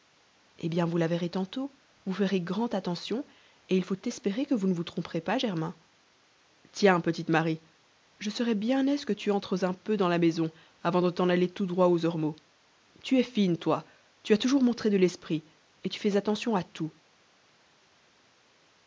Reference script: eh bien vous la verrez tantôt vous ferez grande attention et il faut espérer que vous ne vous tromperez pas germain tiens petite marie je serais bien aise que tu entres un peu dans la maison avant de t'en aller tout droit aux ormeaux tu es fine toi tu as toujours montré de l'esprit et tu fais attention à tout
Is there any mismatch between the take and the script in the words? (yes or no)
no